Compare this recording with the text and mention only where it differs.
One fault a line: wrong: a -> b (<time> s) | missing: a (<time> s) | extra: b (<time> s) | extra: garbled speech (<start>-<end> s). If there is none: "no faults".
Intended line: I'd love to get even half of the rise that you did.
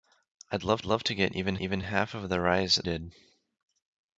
extra: love (0.8 s)
extra: even (1.6 s)
missing: that you (2.8 s)